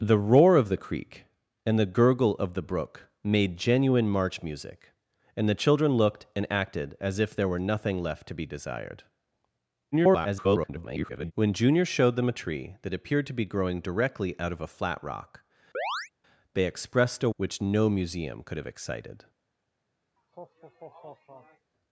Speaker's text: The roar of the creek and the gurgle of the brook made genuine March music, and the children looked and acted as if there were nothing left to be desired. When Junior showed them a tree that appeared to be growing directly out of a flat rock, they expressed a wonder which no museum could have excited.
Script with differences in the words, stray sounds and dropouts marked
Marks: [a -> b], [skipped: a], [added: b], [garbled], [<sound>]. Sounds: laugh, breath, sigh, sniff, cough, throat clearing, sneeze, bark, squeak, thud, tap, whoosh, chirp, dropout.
The roar of the creek and the gurgle of the brook made genuine March music, and the children looked and acted as if there were nothing left to be desired. [garbled] When Junior showed them a tree that appeared to be growing directly out of a flat rock, [chirp] they expressed a [skipped: wonder] which no museum could have excited. [laugh]